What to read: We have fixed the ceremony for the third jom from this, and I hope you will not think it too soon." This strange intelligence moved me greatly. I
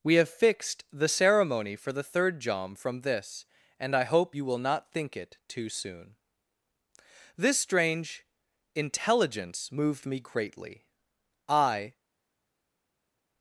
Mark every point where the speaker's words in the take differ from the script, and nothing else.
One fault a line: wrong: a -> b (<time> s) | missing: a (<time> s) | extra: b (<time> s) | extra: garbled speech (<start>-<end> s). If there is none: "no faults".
no faults